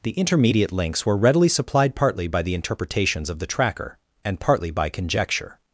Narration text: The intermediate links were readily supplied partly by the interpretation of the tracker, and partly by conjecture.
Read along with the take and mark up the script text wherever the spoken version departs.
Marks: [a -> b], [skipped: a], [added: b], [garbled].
The intermediate links were readily supplied partly by the [interpretation -> interpretations] of the tracker, and partly by conjecture.